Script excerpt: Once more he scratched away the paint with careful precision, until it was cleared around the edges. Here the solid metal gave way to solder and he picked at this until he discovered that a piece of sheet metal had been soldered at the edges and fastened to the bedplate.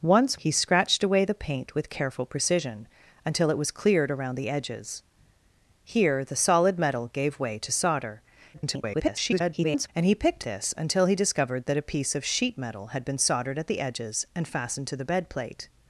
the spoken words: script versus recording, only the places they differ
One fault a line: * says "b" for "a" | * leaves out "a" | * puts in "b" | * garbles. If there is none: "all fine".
* leaves out "more"
* garbles
* leaves out "at"